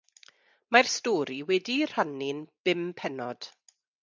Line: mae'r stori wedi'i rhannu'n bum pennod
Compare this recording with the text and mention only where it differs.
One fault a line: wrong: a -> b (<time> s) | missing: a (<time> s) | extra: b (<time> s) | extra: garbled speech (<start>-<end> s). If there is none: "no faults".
no faults